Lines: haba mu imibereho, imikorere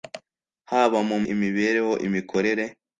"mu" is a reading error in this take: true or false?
false